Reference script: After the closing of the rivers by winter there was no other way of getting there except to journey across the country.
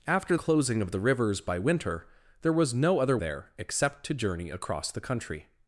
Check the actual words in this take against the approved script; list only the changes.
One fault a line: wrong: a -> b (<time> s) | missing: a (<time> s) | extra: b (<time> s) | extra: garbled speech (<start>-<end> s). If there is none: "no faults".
missing: the (0.3 s)
missing: way of getting (3.2 s)